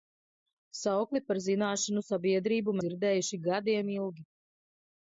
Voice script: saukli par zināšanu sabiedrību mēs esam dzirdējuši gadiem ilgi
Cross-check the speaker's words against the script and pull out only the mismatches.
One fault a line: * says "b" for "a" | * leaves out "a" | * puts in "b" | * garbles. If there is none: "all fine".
* leaves out "mēs esam"